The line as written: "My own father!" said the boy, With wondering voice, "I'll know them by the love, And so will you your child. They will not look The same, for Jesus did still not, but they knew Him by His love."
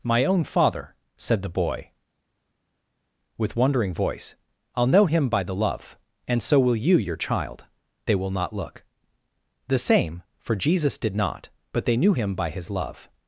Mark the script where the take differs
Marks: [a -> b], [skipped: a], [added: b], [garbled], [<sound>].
"My own father!" said the boy, With wondering voice, "I'll know [them -> him] by the love, And so will you your child. They will not look The same, for Jesus did [skipped: still] not, but they knew Him by His love."